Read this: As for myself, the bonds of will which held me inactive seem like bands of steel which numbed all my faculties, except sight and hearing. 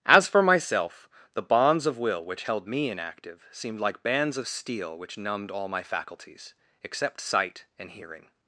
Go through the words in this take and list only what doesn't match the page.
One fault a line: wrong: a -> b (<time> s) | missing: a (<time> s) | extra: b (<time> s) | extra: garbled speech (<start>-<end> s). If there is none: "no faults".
wrong: seem -> seemed (3.5 s)